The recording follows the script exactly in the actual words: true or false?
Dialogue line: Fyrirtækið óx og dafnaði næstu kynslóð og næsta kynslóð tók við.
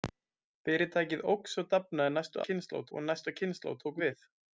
true